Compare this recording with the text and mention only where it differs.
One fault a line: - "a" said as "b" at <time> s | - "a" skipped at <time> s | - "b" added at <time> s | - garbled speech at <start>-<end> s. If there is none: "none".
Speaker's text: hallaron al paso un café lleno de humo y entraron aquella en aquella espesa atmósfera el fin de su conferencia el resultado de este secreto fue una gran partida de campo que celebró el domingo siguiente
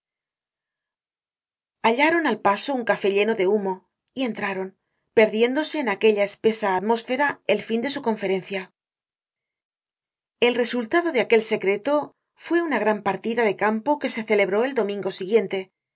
- "aquella" said as "perdiéndose" at 5.1 s
- "este" said as "aquel" at 11.2 s
- "se" added at 14.1 s